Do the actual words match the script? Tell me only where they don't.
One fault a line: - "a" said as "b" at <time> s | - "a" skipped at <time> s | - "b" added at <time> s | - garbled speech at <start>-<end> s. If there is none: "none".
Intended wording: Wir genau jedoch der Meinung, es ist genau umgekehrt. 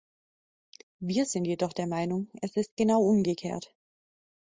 - "genau" said as "sind" at 1.2 s